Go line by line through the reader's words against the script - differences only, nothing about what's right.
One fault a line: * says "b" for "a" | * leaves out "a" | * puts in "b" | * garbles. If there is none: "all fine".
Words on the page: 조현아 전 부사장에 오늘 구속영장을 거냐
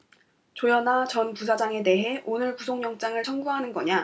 * puts in "대해"
* puts in "청구하는"